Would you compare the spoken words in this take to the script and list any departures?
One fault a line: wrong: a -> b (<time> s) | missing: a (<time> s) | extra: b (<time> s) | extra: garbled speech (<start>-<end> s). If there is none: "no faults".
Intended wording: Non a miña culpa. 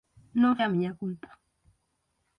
no faults